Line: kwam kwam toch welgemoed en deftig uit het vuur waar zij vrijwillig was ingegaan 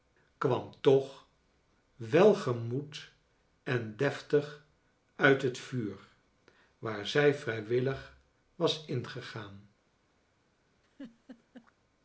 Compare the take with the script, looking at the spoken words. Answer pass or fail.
fail